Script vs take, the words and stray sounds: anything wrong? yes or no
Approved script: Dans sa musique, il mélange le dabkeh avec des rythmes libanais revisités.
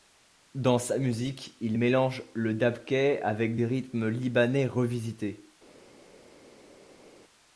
no